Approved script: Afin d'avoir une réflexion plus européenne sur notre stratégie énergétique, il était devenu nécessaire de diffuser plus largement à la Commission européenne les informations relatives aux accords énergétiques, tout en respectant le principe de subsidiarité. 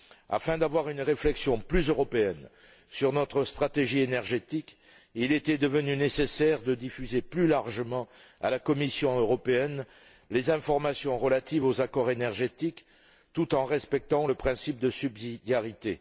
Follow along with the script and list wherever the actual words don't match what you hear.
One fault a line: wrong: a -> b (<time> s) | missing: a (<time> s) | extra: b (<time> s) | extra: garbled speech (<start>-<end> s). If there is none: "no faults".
no faults